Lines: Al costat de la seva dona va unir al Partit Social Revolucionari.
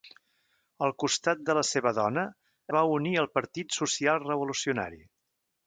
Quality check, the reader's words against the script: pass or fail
pass